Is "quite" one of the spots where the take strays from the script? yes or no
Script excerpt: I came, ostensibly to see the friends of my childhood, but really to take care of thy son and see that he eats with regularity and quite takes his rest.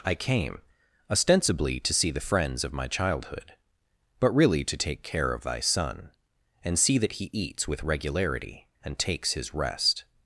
yes